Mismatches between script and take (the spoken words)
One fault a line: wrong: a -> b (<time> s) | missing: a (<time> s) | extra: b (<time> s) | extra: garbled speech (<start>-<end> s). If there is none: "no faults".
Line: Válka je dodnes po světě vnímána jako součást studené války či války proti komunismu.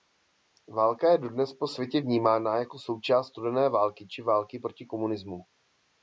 no faults